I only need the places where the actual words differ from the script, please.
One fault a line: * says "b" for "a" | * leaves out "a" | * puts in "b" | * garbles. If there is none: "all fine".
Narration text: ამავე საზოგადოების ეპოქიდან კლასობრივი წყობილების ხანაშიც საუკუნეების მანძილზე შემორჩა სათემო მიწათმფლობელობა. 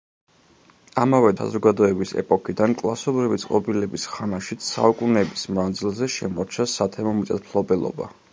all fine